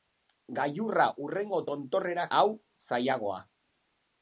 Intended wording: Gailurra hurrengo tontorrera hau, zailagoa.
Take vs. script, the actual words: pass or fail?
pass